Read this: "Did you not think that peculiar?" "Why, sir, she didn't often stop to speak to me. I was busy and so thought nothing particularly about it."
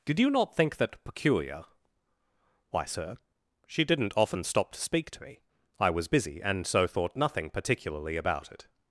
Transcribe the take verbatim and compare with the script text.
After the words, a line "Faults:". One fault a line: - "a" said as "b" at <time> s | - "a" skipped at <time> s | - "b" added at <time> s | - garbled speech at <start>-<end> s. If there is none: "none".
"Did you not think that peculiar?" "Why, sir, she didn't often stop to speak to me. I was busy and so thought nothing particularly about it."
Faults:
none